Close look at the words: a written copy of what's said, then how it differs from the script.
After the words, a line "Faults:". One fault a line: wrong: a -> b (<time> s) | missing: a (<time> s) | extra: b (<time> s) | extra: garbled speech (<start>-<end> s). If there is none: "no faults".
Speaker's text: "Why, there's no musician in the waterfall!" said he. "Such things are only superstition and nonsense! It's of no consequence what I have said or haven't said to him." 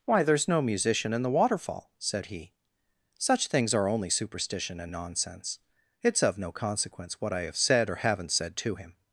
"Why, there's no musician in the waterfall!" said he. "Such things are only superstition and nonsense! It's of no consequence what I have said or haven't said to him."
Faults:
no faults